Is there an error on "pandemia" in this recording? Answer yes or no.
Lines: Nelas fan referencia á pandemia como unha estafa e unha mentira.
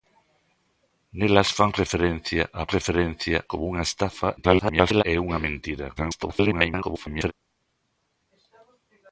yes